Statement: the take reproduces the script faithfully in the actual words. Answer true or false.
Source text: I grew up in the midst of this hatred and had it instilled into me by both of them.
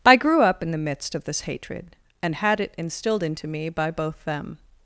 false